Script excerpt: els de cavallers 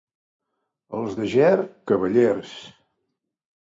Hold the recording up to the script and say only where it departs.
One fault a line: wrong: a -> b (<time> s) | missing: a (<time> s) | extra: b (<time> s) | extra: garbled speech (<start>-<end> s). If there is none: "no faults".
extra: ger (1.3 s)